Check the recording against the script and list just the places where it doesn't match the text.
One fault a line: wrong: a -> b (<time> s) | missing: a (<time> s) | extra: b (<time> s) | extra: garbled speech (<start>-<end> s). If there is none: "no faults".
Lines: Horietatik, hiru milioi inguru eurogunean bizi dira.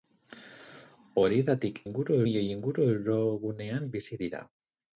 wrong: hiru -> inguru (1.9 s)